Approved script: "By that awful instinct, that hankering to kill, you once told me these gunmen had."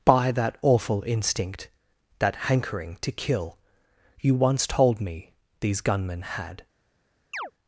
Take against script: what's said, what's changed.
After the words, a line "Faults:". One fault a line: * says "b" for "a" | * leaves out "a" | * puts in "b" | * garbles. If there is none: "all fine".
"By that awful instinct, that hankering to kill, you once told me these gunmen had."
Faults:
all fine